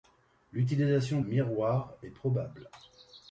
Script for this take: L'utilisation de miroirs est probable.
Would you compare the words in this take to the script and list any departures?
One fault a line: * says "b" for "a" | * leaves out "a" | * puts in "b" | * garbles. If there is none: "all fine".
* leaves out "de"